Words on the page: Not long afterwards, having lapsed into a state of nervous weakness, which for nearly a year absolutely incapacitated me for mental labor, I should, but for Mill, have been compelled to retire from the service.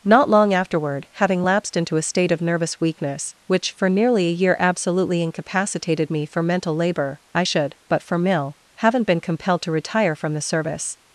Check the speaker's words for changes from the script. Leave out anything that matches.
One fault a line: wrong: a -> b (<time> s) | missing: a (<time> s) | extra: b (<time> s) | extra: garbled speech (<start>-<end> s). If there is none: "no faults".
wrong: afterwards -> afterward (0.5 s)
wrong: have -> haven't (8.7 s)